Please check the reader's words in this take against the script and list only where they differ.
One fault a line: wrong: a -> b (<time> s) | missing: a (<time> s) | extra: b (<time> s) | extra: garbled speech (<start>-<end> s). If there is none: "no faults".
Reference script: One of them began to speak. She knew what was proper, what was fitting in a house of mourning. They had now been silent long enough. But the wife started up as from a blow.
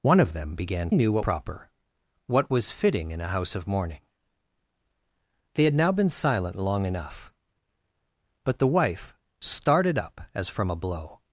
missing: to speak She (0.9 s)
missing: was (1.3 s)